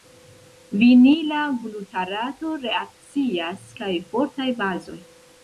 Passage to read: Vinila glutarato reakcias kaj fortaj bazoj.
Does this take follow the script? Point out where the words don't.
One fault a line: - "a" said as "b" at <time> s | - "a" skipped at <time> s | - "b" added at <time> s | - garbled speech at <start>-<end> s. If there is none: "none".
none